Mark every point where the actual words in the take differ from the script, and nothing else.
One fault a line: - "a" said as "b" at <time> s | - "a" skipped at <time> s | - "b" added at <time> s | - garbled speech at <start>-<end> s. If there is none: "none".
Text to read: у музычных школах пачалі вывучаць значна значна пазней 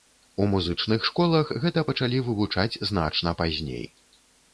- "гэта" added at 1.6 s
- "значна" skipped at 3.4 s